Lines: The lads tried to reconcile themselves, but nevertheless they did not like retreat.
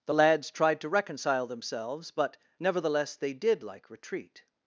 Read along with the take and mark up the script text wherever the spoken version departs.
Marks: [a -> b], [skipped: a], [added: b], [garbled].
The lads tried to reconcile themselves, but nevertheless they did [skipped: not] like retreat.